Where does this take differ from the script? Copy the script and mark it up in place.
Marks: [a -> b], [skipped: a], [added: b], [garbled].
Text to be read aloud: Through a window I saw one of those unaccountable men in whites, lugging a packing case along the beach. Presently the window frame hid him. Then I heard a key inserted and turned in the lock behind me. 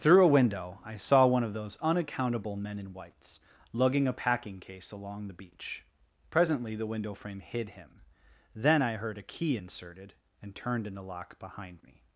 Through a window I saw one of those unaccountable men in whites, lugging a packing case along the beach. Presently the window frame hid him. Then I heard a key inserted and turned in the lock behind me.